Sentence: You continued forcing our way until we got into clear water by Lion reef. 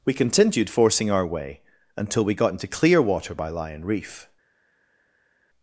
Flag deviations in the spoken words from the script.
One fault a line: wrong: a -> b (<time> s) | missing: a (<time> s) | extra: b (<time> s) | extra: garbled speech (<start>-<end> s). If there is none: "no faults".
wrong: You -> We (0.0 s)